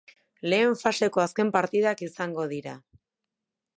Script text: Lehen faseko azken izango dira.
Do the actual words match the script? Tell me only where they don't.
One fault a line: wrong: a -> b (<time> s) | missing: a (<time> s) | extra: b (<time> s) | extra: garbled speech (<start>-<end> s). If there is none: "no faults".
extra: partidak (1.6 s)